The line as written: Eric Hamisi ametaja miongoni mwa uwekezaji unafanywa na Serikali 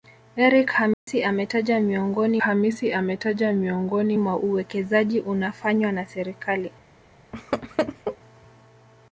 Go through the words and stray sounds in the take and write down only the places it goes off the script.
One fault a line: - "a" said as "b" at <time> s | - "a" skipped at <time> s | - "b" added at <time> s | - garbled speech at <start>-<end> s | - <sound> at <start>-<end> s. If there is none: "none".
- dropout at 0.9-1.1 s
- "Hamisi ametaja miongoni" added at 2.4 s
- laugh at 7.3-8.2 s